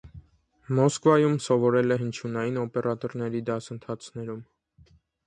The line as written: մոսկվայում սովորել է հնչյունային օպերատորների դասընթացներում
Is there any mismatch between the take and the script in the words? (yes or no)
no